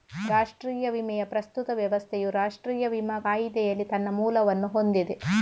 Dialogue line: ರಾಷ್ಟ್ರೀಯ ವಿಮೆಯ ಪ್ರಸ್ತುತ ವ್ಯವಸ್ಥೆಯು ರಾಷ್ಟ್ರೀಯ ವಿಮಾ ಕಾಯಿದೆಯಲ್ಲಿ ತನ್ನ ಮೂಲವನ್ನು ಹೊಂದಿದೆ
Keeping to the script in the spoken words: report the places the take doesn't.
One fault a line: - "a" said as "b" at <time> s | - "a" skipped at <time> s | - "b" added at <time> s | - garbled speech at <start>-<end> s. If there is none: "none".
none